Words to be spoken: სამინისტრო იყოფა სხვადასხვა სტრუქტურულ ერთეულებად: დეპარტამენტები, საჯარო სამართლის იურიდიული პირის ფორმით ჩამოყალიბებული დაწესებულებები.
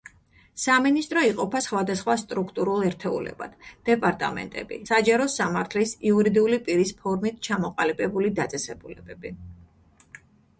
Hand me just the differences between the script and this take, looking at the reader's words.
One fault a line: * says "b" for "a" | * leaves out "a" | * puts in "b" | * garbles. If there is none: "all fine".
all fine